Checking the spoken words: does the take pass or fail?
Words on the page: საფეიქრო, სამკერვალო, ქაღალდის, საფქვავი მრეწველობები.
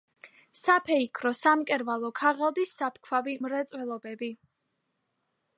pass